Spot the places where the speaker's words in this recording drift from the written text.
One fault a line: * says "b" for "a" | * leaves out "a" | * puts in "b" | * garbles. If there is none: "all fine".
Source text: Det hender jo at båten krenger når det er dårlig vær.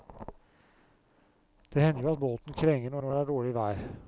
* puts in "når"